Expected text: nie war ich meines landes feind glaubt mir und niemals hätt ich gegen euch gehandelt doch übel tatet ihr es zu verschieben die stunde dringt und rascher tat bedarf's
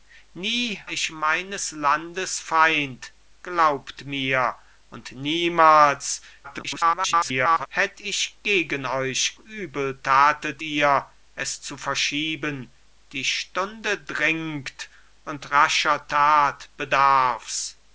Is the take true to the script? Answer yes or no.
no